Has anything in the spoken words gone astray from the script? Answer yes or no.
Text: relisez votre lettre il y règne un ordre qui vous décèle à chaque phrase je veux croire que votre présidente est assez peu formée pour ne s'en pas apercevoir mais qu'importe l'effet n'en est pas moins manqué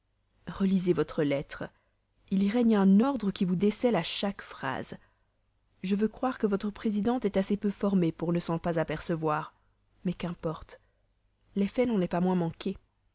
no